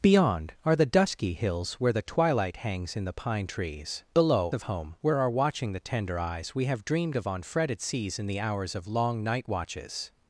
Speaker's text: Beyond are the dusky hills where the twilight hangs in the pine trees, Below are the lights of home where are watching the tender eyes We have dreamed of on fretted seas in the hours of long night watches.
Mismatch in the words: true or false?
true